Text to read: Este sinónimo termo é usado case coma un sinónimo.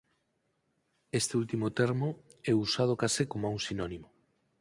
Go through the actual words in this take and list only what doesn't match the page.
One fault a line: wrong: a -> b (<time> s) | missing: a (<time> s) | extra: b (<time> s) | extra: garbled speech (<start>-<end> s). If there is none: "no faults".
wrong: sinónimo -> último (1.4 s)